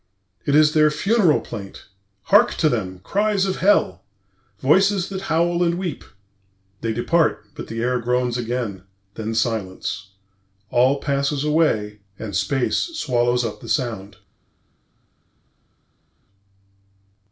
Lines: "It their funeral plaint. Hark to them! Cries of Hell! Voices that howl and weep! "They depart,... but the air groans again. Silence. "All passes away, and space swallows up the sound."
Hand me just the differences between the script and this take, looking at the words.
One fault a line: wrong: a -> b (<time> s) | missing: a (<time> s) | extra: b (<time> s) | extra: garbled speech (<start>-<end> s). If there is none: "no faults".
extra: is (0.6 s)
extra: Then (9.1 s)